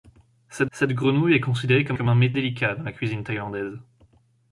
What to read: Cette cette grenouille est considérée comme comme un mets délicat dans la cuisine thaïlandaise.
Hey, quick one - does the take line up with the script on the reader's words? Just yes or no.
yes